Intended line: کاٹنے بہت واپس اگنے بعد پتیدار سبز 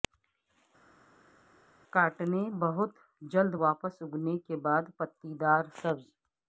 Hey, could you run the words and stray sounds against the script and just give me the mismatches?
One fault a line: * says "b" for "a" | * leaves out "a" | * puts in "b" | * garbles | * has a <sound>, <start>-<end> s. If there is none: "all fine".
* puts in "جلد"
* puts in "کے"